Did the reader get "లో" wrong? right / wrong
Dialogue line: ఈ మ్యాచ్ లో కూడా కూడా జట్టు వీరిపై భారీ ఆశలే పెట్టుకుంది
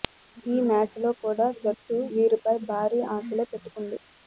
right